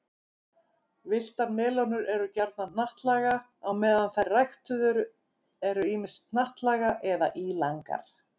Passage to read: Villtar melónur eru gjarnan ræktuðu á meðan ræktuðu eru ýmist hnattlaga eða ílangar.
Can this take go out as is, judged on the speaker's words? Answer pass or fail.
fail